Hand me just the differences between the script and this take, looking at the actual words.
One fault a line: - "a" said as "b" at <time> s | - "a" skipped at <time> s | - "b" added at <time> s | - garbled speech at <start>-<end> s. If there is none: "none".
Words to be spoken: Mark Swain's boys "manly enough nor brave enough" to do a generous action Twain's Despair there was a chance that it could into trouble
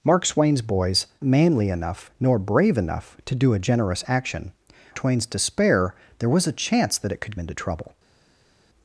none